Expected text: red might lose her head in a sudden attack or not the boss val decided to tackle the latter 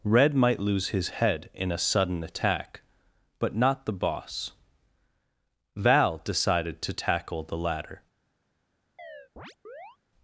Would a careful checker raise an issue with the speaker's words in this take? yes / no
yes